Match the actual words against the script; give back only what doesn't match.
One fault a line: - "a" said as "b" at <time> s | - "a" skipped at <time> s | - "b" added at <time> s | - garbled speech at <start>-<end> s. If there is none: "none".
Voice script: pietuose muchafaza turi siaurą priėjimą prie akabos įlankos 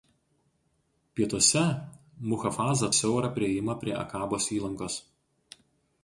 - "turi" skipped at 2.9 s